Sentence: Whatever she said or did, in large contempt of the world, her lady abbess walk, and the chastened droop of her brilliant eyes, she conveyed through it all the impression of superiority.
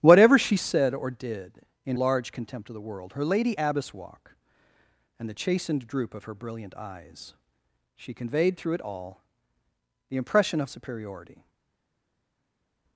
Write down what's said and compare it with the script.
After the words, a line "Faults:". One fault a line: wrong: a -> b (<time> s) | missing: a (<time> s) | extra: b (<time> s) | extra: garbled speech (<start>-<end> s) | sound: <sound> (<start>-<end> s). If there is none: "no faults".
Whatever she said or did, in large contempt of the world, her lady abbess walk, and the chastened droop of her brilliant eyes, she conveyed through it all the impression of superiority.
Faults:
no faults